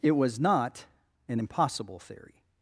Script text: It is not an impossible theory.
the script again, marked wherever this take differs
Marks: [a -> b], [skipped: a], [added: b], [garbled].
It [is -> was] not an impossible theory.